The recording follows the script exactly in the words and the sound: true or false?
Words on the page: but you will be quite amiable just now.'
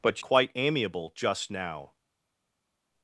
false